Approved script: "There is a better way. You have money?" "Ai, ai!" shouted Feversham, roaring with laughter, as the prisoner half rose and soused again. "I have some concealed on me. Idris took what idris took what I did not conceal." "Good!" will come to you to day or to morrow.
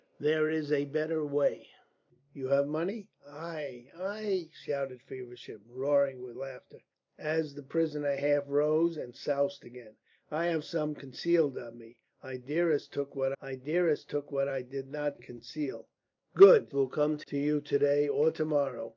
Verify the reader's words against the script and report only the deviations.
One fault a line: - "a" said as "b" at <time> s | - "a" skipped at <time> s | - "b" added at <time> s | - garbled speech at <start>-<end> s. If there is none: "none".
none